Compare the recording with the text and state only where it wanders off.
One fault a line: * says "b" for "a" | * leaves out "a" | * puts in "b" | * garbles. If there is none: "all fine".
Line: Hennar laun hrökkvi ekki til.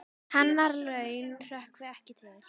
all fine